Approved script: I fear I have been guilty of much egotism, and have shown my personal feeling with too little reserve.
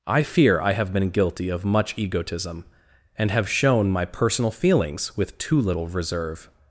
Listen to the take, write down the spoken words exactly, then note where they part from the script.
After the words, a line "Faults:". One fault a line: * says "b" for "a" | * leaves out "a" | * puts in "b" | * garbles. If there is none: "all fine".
I fear I have been guilty of much egotism, and have shown my personal feelings with too little reserve.
Faults:
* says "feelings" for "feeling"